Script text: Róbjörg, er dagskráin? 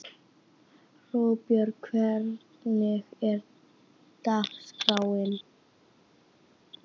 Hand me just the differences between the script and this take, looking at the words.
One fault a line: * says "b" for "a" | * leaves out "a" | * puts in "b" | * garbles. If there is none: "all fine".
* puts in "hvernig"